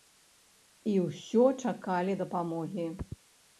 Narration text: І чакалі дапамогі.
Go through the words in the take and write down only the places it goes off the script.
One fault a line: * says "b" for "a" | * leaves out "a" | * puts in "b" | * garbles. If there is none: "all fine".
* puts in "ўсё"